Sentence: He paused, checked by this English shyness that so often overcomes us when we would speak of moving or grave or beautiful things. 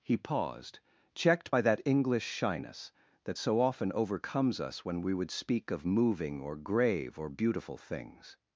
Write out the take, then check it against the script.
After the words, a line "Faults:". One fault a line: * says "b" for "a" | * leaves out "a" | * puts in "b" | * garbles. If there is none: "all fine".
He paused, checked by that English shyness that so often overcomes us when we would speak of moving or grave or beautiful things.
Faults:
* says "that" for "this"